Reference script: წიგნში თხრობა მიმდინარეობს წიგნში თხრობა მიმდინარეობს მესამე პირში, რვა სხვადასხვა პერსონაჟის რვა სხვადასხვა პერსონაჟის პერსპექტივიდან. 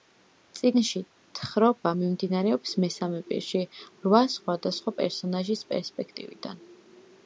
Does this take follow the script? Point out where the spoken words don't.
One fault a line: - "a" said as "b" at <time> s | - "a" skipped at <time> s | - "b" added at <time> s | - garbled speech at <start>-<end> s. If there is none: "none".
- "წიგნში თხრობა მიმდინარეობს" skipped at 2.8 s
- "რვა სხვადასხვა პერსონაჟის" skipped at 5.6 s